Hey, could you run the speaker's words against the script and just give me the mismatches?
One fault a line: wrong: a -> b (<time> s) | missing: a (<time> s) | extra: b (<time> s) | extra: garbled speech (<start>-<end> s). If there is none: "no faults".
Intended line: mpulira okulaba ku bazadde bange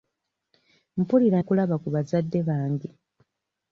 no faults